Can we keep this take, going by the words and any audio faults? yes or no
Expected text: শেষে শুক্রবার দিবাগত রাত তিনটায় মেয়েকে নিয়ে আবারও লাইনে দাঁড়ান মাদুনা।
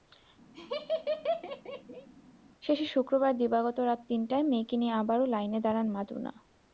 no